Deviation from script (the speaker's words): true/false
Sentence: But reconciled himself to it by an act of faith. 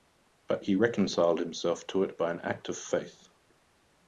true